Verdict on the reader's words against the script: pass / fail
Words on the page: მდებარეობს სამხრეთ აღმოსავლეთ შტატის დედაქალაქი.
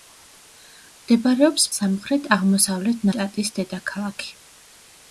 pass